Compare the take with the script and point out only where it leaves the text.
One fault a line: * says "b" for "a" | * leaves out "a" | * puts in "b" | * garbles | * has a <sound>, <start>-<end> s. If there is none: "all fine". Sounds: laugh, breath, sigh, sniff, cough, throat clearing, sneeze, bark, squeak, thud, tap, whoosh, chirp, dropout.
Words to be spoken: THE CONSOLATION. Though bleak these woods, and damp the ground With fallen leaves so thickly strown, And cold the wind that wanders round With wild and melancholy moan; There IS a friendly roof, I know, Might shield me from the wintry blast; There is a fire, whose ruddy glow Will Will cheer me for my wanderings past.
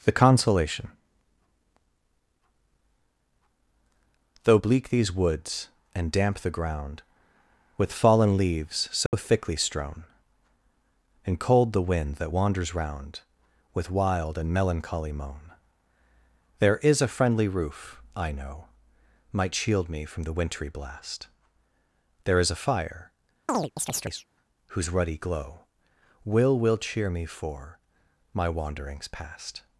* has a dropout, 9.1-9.1 s
* has a chirp, 23.5-24.3 s